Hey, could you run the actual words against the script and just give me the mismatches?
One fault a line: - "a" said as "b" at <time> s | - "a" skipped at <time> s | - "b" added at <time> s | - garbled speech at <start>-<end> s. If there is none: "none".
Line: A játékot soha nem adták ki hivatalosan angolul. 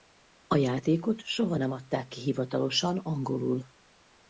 none